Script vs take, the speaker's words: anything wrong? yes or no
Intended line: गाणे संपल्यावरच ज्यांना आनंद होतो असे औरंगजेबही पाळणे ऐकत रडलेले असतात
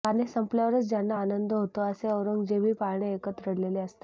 no